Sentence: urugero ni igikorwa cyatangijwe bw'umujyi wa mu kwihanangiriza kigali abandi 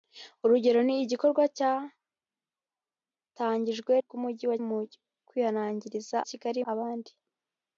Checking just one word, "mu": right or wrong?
right